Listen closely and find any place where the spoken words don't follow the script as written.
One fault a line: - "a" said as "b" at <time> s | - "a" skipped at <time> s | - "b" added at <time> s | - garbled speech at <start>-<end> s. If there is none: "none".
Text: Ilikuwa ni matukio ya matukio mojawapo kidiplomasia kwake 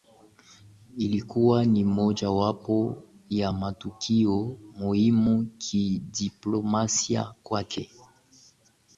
- "matukio" said as "mojawapo" at 1.8 s
- "mojawapo" said as "muhimu" at 4.7 s